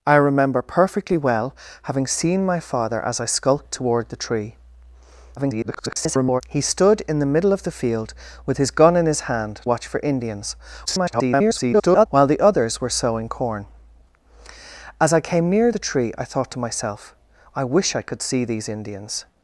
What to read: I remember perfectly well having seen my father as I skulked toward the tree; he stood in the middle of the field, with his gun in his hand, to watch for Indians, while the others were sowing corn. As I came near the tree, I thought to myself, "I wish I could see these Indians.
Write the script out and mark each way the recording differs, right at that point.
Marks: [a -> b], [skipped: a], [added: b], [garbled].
I remember perfectly well having seen my father as I skulked toward the tree; [garbled] he stood in the middle of the field, with his gun in his hand, [skipped: to] watch for Indians, [garbled] while the others were sowing corn. As I came near the tree, I thought to myself, "I wish I could see these Indians.